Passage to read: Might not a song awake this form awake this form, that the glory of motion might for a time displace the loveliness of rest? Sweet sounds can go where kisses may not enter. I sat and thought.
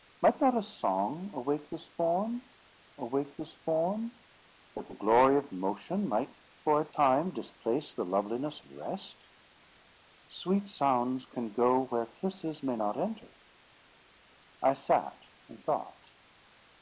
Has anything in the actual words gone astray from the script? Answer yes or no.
no